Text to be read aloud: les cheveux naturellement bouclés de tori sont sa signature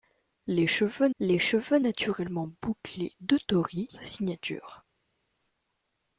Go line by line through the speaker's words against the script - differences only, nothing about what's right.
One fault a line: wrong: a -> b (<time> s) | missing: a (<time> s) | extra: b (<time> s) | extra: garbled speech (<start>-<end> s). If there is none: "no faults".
extra: les cheveux (1.2 s)
missing: sont (3.9 s)